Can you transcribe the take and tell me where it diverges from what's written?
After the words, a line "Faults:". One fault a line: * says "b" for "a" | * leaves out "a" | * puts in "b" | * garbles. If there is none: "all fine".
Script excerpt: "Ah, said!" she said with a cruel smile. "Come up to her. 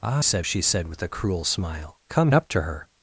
"Ah, said!" she said with a cruel smile. "Come up to her.
Faults:
all fine